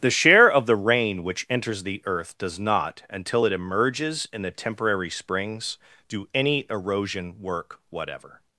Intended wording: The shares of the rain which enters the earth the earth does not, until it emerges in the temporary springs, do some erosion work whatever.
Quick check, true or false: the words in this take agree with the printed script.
false